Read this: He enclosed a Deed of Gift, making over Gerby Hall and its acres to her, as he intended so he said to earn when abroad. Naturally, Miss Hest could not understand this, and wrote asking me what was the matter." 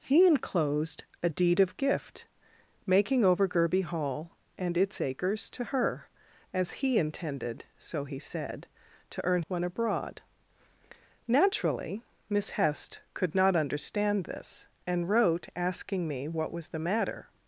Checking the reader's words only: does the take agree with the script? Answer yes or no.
yes